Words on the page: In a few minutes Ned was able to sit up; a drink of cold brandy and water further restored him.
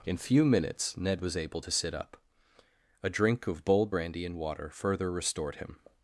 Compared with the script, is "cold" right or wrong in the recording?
wrong